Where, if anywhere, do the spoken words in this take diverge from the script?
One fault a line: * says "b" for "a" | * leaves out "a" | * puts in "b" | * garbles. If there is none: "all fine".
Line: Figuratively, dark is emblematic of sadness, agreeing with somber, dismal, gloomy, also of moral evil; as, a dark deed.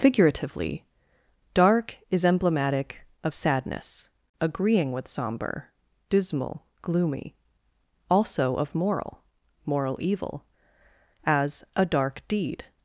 * puts in "moral"